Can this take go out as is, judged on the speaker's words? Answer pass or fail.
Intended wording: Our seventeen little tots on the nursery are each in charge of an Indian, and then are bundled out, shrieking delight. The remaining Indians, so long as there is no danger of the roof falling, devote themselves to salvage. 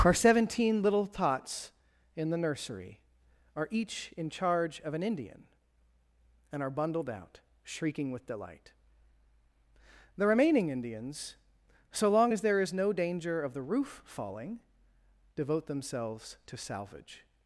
fail